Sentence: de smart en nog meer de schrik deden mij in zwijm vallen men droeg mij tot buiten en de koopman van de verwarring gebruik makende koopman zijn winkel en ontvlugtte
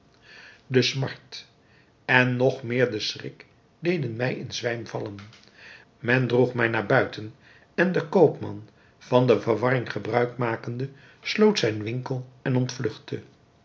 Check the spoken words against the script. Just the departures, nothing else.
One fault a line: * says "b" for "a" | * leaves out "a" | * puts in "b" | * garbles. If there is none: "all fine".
* says "naar" for "tot"
* says "sloot" for "koopman"